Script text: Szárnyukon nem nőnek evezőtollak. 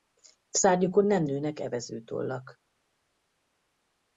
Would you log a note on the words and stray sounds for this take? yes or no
no